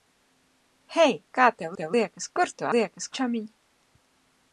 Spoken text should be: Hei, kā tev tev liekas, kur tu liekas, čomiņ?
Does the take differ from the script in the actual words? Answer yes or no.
no